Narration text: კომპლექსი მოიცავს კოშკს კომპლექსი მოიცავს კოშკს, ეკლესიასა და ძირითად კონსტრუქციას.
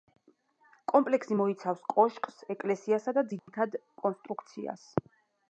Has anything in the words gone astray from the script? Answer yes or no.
yes